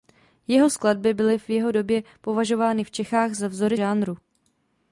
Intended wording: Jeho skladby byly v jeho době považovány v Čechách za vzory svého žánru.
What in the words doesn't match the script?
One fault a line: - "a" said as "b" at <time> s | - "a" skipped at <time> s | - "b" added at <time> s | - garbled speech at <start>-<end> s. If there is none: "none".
- "svého" skipped at 3.8 s